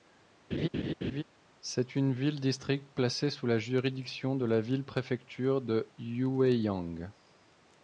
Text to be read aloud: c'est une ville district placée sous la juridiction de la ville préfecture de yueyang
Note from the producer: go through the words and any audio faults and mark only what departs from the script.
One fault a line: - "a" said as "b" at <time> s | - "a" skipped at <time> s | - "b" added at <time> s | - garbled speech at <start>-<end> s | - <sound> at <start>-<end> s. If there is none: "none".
- laugh at 0.5-1.2 s